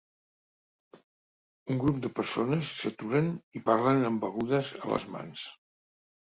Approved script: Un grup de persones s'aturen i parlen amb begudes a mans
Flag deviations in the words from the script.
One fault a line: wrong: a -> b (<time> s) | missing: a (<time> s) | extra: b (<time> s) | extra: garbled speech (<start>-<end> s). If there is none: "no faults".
extra: les (4.9 s)